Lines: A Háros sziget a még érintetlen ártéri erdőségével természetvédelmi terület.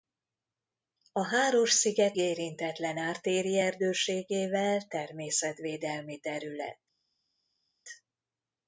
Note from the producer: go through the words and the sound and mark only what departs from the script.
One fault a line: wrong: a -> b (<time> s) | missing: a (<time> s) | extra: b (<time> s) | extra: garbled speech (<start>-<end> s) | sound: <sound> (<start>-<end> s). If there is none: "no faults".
missing: a még (2.2 s)